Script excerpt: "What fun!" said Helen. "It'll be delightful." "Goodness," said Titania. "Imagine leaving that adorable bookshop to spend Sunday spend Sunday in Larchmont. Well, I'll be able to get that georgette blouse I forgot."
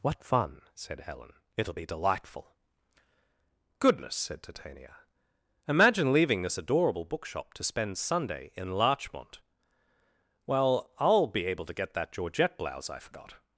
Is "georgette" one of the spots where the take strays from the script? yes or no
no